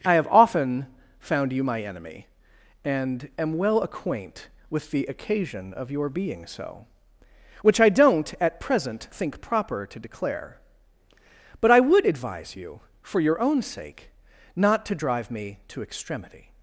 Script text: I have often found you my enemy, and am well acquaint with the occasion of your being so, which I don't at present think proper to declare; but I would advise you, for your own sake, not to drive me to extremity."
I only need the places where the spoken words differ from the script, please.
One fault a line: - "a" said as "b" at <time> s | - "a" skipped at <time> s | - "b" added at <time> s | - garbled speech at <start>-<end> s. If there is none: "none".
none